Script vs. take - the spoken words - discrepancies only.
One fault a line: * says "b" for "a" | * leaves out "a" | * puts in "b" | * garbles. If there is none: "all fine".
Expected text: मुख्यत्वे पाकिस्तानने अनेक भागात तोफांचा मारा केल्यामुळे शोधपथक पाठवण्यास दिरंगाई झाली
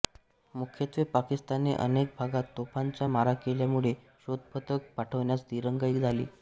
all fine